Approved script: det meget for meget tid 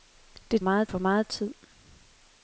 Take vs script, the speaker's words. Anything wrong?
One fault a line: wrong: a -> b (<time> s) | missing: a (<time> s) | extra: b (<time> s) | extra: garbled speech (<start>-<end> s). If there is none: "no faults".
no faults